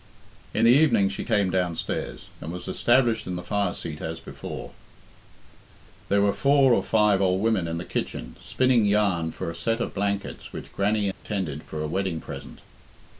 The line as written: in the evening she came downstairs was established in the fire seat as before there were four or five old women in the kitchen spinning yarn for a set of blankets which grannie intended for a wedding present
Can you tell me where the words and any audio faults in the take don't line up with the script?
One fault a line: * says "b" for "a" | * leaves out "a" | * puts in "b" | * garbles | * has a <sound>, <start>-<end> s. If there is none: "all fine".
* puts in "and"
* has a dropout, 11.1-11.3 s